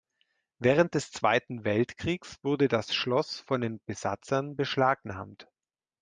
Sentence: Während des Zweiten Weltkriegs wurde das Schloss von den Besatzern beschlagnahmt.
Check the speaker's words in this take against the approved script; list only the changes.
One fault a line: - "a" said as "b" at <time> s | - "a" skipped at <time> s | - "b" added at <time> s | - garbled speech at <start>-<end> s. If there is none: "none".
none